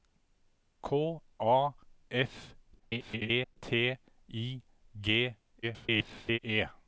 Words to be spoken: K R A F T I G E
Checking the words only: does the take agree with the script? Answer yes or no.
no